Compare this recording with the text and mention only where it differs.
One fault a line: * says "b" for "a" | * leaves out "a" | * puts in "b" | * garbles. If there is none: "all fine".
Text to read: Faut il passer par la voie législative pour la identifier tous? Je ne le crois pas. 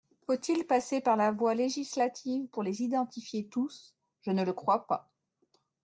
* says "les" for "la"